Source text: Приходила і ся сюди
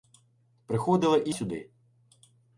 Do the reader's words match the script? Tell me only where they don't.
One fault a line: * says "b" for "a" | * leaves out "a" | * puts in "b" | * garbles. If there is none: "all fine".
* leaves out "ся"